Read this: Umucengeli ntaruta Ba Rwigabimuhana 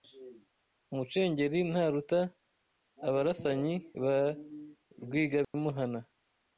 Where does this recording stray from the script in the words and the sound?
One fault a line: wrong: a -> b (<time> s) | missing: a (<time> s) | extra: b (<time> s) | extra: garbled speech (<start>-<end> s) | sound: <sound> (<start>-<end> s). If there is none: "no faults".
extra: Abarasanyi (3.1 s)
sound: dropout (5.4-5.5 s)